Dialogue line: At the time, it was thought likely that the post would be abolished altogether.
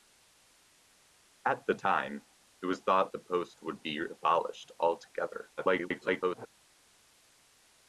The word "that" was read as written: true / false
false